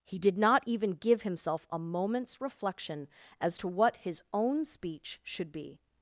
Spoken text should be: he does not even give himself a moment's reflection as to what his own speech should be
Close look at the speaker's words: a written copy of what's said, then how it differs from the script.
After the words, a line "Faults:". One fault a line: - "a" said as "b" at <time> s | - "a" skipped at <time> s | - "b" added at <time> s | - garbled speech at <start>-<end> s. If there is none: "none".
he did not even give himself a moment's reflection as to what his own speech should be
Faults:
- "does" said as "did" at 0.2 s